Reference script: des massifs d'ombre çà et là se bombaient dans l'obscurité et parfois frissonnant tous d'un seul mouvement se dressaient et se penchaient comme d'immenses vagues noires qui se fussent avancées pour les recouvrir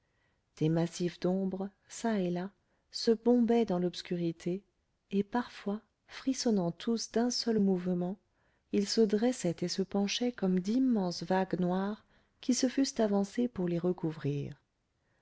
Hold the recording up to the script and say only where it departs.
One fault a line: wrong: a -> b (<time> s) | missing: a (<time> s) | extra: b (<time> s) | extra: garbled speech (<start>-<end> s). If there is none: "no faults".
extra: ils (8.7 s)